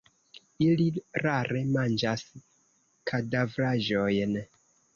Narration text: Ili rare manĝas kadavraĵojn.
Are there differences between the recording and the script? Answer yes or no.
no